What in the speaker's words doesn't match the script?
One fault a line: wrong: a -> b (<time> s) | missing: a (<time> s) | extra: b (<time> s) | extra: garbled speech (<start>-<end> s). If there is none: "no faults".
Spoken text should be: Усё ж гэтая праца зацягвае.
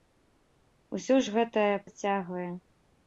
missing: праца (1.8 s)